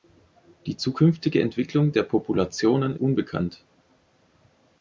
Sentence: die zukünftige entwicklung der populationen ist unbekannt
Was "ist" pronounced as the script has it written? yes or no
no